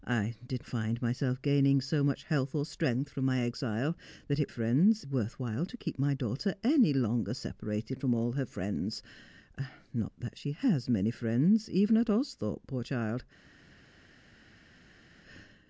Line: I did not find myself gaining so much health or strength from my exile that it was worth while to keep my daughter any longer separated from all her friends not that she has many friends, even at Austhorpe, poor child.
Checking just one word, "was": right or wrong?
wrong